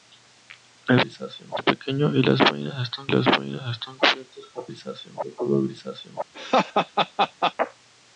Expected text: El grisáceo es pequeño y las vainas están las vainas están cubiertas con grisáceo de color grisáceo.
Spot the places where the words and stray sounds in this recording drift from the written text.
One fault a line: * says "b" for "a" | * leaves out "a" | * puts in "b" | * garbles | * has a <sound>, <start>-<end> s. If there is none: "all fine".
* has a laugh, 6.3-7.5 s